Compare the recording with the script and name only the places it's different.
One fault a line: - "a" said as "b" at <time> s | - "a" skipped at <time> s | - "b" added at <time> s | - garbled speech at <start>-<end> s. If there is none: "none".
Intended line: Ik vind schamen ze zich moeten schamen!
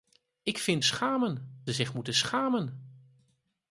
none